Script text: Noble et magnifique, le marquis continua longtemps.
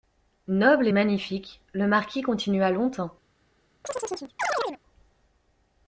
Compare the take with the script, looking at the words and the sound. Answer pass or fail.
fail